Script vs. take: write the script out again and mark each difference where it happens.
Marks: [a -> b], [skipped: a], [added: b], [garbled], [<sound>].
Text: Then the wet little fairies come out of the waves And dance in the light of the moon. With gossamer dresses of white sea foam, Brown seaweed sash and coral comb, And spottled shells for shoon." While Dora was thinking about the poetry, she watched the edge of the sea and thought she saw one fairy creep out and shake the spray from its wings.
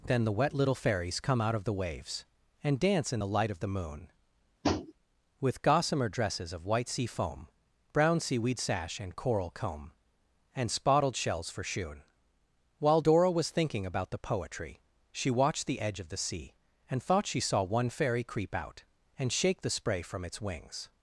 Then the wet little fairies come out of the waves And dance in the light of the moon. [tap] With gossamer dresses of white sea foam, Brown seaweed sash and coral comb, And spottled shells for shoon." While Dora was thinking about the poetry, she watched the edge of the sea and thought she saw one fairy creep out and shake the spray from its wings.